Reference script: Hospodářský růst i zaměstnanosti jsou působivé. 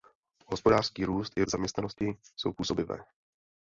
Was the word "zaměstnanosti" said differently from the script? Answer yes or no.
no